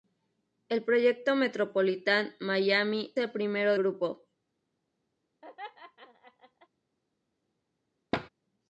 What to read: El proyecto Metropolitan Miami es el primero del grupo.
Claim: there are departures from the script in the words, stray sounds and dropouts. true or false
true